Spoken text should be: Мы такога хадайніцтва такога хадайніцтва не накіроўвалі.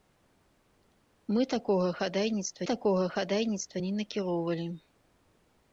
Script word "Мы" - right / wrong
right